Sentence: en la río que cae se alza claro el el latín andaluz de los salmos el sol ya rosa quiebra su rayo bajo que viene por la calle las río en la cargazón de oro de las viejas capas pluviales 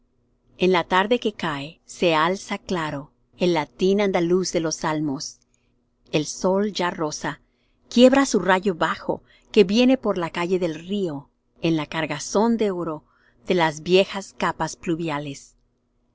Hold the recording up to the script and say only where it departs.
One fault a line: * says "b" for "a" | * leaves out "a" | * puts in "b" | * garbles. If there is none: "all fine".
* says "tarde" for "río"
* leaves out "el"
* says "del" for "las"